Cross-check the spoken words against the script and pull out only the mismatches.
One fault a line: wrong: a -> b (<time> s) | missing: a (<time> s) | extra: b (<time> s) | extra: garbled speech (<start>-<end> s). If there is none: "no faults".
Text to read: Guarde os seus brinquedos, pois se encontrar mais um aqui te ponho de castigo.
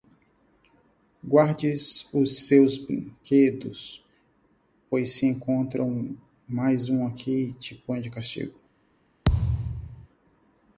no faults